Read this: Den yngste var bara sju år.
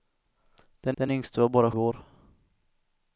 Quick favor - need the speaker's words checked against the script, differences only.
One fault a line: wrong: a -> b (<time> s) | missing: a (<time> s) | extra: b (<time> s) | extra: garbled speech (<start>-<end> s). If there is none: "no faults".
extra: den (1.0 s)
missing: sju (1.7 s)